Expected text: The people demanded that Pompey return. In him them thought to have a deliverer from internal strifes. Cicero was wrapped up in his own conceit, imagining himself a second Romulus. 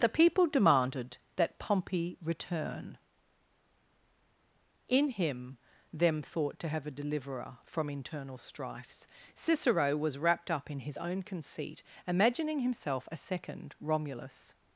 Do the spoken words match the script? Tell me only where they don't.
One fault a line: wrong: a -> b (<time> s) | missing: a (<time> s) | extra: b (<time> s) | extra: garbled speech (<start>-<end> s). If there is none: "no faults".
no faults